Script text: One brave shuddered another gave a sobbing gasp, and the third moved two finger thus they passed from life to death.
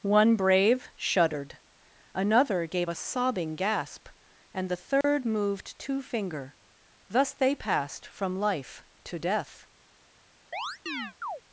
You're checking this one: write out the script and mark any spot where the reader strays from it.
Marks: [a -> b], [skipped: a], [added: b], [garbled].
One brave shuddered another gave a sobbing gasp, and the third moved two finger thus they passed from life to death.